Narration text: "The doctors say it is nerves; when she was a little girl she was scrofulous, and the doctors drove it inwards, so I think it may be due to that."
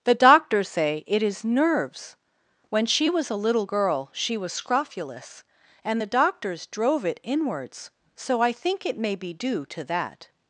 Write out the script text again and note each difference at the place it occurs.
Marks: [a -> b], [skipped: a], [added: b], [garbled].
"The doctors say it is nerves; when she was a little girl she was scrofulous, and the doctors drove it inwards, so I think it may be due to that."